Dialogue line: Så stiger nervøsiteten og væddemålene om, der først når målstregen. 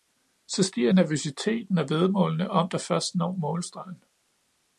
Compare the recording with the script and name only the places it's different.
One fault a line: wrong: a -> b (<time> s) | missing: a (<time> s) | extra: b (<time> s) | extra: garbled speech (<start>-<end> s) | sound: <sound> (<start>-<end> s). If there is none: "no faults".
no faults